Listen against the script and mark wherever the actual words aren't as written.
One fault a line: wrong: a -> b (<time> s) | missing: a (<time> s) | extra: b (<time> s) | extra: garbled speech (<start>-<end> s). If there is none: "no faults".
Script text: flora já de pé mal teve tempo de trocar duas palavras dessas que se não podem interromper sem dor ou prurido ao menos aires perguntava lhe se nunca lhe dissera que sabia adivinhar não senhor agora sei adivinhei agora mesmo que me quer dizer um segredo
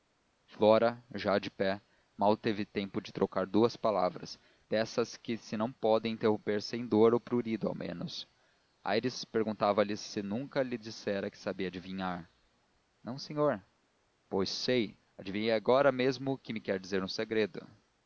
wrong: agora -> pois (14.3 s)